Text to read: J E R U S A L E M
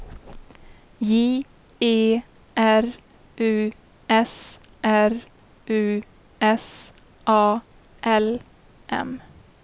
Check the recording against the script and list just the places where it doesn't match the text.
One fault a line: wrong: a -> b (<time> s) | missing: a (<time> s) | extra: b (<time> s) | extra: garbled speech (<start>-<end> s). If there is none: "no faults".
extra: R U S (4.8 s)
missing: E (8.4 s)